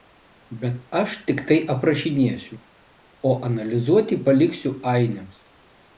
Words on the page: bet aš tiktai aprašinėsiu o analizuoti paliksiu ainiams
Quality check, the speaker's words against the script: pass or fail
pass